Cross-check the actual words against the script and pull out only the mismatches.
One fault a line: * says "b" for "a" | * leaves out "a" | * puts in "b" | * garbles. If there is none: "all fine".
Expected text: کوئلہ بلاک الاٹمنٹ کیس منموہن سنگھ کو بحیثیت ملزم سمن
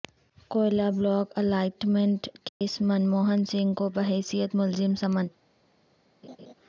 all fine